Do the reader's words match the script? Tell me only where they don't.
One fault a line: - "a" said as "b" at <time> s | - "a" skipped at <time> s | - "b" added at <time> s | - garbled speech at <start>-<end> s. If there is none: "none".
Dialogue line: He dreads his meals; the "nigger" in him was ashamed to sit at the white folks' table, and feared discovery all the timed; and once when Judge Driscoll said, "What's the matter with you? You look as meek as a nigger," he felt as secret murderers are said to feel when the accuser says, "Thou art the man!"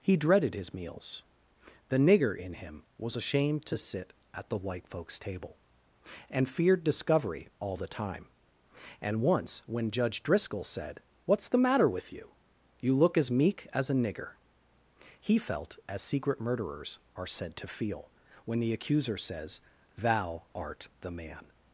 - "dreads" said as "dreaded" at 0.2 s
- "timed" said as "time" at 7.9 s